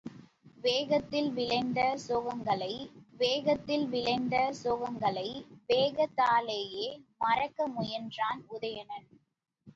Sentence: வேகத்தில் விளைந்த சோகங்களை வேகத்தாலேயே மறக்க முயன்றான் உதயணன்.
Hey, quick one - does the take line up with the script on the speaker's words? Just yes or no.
no